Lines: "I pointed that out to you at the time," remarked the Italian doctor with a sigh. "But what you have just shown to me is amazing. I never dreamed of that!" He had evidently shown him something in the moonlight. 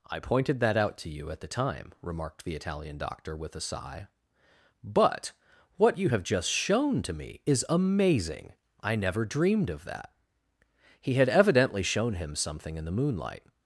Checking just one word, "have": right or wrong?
right